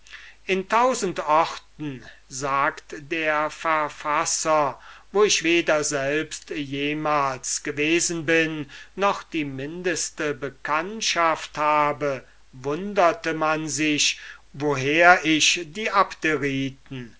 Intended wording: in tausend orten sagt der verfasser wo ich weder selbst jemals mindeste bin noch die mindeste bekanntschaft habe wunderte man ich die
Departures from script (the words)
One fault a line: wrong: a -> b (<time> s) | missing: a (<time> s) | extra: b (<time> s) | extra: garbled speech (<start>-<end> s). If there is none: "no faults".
wrong: mindeste -> gewesen (7.6 s)
extra: sich woher (13.7 s)